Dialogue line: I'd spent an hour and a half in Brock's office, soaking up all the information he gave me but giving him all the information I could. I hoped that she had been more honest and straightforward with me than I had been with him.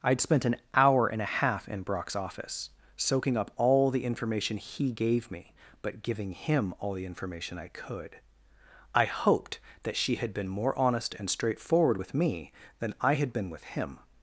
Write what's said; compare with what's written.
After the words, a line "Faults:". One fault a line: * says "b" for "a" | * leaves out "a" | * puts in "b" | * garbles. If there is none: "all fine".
I'd spent an hour and a half in Brock's office, soaking up all the information he gave me but giving him all the information I could. I hoped that she had been more honest and straightforward with me than I had been with him.
Faults:
all fine